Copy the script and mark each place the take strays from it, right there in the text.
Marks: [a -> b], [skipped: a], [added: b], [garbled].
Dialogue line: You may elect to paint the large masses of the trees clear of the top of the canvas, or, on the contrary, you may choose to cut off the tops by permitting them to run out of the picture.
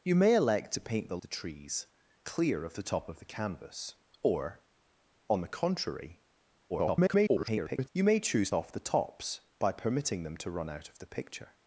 You may elect to paint the [skipped: large masses of] the trees clear of the top of the canvas, or, on the contrary, [garbled] you may choose [skipped: to cut] off the tops by permitting them to run out of the picture.